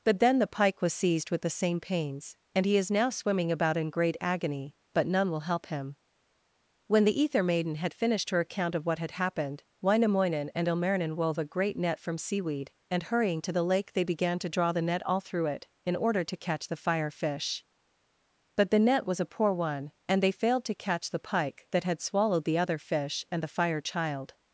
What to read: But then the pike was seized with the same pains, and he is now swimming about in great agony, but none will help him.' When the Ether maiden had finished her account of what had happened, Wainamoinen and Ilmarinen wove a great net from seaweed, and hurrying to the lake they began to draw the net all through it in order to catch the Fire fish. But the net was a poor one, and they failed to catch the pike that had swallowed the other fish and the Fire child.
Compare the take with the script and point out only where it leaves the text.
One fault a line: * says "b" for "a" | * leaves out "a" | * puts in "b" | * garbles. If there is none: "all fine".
all fine